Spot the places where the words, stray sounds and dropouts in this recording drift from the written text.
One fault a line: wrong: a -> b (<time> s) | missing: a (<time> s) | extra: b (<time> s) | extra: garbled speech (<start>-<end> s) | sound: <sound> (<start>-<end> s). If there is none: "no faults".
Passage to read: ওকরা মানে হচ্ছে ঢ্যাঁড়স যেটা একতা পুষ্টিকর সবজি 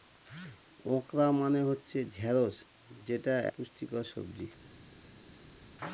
missing: একতা (3.3 s)